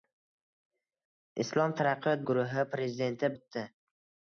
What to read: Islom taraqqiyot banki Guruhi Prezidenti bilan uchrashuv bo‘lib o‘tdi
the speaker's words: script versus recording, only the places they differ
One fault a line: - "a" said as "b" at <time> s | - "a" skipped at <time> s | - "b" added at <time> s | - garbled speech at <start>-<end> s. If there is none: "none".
- "banki" skipped at 2.2 s
- "bilan uchrashuv bo‘lib" skipped at 3.3 s